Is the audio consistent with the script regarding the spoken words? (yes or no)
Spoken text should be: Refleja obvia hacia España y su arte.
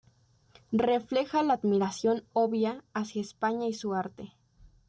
no